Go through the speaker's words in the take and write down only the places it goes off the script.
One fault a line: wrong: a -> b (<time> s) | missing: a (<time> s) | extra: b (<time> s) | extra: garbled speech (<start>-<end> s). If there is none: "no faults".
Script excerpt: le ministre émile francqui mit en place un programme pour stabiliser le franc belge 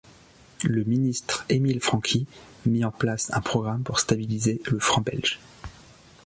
no faults